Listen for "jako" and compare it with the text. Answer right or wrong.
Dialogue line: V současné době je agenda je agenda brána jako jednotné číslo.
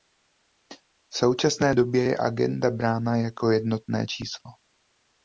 right